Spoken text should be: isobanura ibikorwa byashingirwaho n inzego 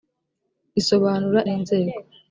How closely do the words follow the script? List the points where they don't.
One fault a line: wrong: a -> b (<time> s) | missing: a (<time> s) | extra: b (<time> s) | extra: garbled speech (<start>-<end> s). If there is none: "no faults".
missing: ibikorwa byashingirwaho (1.4 s)